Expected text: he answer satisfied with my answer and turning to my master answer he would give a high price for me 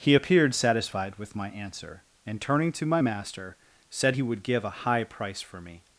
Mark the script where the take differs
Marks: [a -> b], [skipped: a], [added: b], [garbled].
he [answer -> appeared] satisfied with my answer and turning to my master [answer -> said] he would give a high price for me